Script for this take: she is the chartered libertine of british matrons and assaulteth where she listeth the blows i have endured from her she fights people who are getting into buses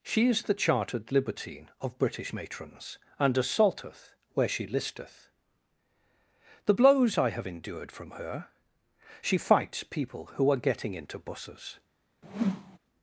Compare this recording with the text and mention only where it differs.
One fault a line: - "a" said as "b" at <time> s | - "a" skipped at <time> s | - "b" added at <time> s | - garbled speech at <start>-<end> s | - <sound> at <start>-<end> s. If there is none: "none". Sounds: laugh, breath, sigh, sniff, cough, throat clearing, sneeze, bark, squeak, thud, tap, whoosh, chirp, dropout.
- whoosh at 12.2-12.8 s